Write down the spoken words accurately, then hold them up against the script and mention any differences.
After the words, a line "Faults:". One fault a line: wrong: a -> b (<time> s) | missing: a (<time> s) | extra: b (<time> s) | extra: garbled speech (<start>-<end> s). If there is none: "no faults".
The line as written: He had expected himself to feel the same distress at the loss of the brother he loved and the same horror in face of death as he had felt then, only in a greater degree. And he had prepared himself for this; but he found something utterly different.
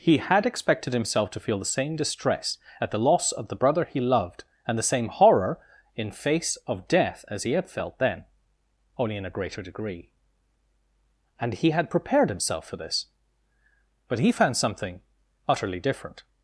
He had expected himself to feel the same distress at the loss of the brother he loved and the same horror in face of death as he had felt then, only in a greater degree. And he had prepared himself for this; but he found something utterly different.
Faults:
no faults